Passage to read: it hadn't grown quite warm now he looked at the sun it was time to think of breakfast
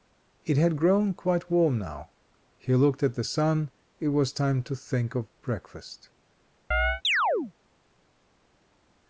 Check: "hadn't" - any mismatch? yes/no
yes